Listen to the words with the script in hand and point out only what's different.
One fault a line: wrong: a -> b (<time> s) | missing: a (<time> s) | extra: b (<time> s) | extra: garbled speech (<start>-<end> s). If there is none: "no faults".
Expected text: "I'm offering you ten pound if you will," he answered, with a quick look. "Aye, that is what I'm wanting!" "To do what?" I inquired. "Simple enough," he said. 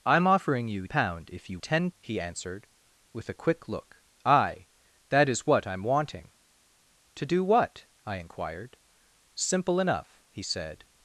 missing: ten (0.9 s)
wrong: will -> ten (1.6 s)